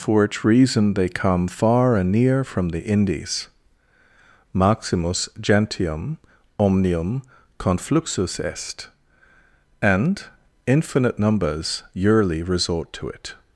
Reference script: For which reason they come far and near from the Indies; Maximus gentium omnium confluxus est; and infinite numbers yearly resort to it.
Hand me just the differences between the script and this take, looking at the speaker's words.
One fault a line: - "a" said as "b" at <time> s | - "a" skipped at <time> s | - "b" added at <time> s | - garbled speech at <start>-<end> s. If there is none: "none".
none